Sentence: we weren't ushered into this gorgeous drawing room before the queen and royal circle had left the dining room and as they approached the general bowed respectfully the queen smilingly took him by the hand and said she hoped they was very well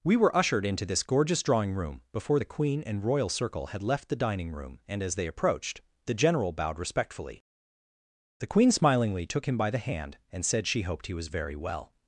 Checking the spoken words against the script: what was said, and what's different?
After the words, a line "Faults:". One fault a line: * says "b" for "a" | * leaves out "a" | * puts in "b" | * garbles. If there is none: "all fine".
we were ushered into this gorgeous drawing room before the queen and royal circle had left the dining room and as they approached the general bowed respectfully the queen smilingly took him by the hand and said she hoped he was very well
Faults:
* says "were" for "weren't"
* says "he" for "they"